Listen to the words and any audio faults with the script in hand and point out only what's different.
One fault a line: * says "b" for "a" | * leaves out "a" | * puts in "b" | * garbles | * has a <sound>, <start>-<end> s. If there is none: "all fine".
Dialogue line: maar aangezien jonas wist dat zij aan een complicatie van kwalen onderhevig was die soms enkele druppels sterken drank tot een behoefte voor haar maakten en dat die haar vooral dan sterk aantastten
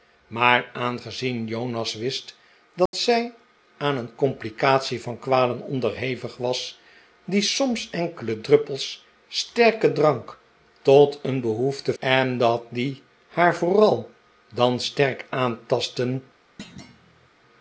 * has a dropout, 2.9-2.9 s
* leaves out "voor haar maakten"
* has a thud, 16.6-17.3 s